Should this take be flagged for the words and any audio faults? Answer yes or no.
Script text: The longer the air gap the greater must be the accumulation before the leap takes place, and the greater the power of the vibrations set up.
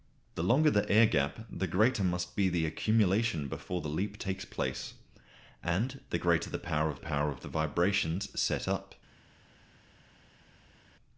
yes